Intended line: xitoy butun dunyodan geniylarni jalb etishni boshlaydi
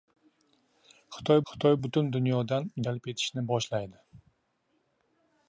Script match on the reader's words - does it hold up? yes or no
no